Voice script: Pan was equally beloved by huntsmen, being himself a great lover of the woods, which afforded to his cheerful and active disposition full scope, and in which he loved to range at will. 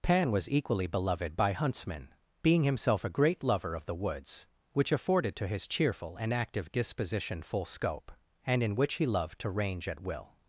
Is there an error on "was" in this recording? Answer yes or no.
no